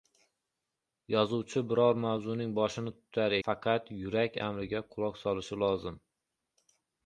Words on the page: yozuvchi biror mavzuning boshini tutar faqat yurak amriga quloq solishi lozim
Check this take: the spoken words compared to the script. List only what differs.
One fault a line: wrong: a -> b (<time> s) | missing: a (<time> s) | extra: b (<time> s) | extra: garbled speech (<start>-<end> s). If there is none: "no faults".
no faults